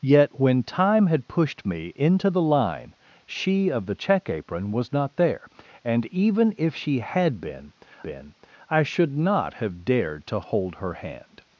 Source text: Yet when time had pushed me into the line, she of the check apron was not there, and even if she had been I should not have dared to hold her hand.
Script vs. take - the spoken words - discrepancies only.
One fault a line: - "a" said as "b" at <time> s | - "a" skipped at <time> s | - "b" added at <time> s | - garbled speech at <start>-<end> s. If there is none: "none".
- "been" added at 8.0 s